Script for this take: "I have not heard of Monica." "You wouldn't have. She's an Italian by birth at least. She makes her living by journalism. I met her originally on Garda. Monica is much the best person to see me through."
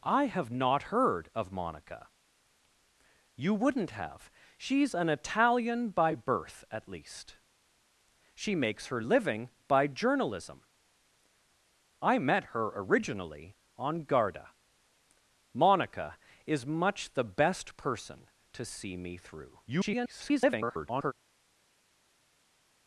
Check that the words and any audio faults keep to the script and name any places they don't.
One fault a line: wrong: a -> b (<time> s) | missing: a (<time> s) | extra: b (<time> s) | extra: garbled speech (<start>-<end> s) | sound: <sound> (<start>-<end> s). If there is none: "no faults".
extra: garbled speech (19.7-21.1 s)